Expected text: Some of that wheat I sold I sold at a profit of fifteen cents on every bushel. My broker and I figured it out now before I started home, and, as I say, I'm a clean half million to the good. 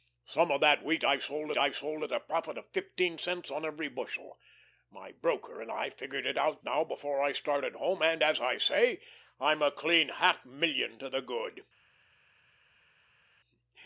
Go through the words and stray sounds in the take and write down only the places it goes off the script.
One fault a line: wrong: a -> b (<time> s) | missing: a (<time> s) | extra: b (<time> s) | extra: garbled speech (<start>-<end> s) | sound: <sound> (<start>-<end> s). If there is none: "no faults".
no faults